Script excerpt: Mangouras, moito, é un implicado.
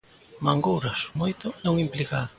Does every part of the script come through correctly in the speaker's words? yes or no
yes